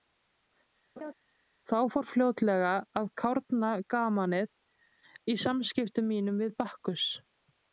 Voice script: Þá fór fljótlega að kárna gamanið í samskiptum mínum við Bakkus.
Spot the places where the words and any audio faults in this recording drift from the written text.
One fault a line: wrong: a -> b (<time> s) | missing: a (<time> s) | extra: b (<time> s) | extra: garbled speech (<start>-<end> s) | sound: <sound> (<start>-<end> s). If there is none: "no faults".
sound: laugh (1.0-1.1 s)